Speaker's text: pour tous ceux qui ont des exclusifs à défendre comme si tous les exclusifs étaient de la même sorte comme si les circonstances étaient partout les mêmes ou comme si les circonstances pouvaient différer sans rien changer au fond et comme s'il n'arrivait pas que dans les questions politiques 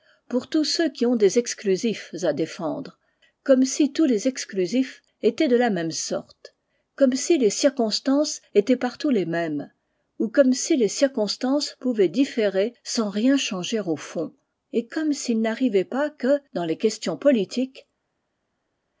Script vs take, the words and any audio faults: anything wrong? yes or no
no